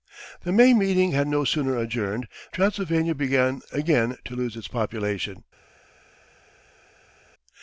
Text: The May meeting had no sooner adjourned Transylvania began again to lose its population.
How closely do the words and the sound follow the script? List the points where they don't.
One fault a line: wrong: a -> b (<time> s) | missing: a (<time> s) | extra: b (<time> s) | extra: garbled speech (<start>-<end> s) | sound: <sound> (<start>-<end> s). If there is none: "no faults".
no faults